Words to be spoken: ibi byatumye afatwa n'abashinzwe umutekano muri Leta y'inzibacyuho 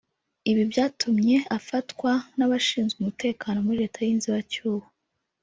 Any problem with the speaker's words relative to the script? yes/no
no